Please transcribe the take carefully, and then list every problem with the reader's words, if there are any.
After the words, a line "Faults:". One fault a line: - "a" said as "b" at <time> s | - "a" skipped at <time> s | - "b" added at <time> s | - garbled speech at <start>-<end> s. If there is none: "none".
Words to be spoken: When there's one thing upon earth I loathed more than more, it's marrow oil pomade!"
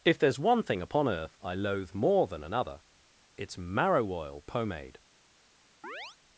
If there's one thing upon earth I loathe more than another, it's marrow oil pomade!"
Faults:
- "When" said as "If" at 0.0 s
- "loathed" said as "loathe" at 1.5 s
- "more" said as "another" at 2.4 s